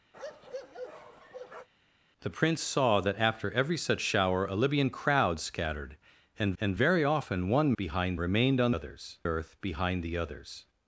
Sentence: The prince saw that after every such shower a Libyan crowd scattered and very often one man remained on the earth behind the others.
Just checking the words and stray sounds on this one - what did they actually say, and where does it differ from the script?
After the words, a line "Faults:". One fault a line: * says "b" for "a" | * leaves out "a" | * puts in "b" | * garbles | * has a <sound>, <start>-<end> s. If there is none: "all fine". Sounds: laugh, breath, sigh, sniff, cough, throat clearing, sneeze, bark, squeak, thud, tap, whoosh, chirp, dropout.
The prince saw that after every such shower a Libyan crowd scattered and and very often one behind remained on others earth behind the others.
Faults:
* has a bark, 0.1-1.7 s
* puts in "and"
* says "behind" for "man"
* says "others" for "the"